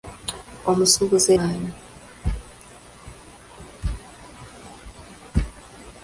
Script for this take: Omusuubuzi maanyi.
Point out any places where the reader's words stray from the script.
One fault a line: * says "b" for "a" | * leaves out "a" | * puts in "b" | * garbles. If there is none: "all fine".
all fine